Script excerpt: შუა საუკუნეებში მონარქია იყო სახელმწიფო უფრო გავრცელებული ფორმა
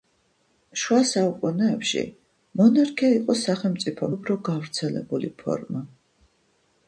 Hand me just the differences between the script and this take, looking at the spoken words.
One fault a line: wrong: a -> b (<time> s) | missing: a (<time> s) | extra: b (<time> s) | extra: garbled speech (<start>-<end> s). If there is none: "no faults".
no faults